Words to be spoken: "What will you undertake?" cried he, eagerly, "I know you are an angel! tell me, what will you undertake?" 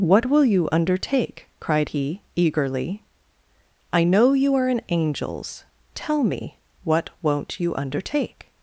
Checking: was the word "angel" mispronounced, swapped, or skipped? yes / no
yes